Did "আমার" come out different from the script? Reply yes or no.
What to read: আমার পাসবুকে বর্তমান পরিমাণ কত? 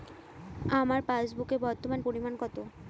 no